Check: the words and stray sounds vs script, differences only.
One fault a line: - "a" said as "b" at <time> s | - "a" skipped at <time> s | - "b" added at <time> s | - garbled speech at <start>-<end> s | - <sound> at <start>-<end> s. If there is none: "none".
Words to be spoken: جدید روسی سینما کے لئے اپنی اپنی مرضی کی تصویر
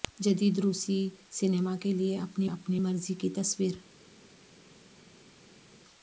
none